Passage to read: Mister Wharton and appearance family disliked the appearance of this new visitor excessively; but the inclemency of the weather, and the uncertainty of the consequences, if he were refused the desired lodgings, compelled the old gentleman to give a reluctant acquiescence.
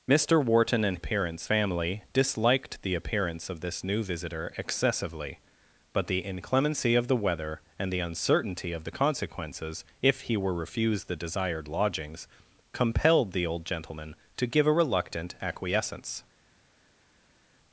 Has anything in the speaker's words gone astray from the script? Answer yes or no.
no